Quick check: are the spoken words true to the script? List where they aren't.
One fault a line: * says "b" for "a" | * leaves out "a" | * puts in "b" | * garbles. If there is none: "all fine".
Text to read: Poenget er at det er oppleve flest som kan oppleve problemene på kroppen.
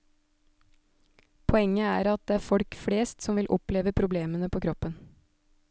* says "folk" for "oppleve"
* says "vil" for "kan"